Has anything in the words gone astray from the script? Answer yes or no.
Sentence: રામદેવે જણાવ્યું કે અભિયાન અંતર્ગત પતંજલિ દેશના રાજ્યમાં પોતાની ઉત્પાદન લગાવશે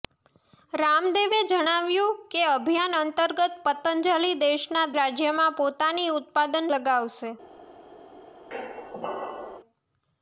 no